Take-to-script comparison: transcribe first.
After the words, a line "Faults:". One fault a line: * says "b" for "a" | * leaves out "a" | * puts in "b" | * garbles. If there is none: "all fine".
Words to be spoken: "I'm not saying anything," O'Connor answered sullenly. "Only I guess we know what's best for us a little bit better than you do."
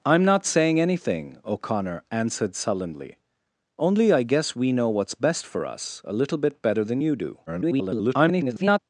"I'm not saying anything," O'Connor answered sullenly. "Only I guess we know what's best for us a little bit better than you do." [garbled]
Faults:
* garbles